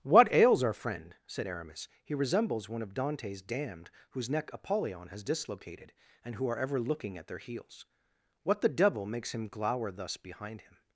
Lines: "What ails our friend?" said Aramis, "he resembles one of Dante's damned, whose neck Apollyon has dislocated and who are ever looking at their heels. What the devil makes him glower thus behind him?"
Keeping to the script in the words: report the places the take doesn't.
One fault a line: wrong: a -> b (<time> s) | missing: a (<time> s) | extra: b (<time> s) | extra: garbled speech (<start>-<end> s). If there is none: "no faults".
no faults